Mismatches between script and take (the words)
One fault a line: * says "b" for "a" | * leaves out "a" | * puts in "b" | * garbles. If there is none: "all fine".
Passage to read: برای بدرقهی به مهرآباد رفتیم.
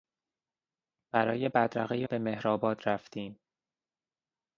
all fine